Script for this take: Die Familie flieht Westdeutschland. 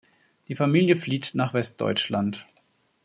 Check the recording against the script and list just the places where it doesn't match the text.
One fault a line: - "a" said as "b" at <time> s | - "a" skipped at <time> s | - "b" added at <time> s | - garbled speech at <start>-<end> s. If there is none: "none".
- "nach" added at 1.3 s